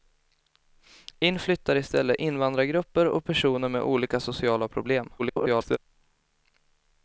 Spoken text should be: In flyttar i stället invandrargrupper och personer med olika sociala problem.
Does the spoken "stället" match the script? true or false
true